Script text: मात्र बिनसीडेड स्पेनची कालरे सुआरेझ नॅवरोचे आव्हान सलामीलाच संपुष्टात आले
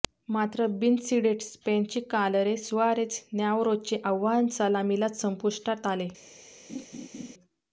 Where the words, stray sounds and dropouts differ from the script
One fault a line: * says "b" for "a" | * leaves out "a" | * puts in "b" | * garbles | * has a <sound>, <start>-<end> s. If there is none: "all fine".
* has a laugh, 6.7-7.3 s